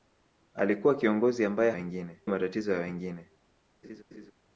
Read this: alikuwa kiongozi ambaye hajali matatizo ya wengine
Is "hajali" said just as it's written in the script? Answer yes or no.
no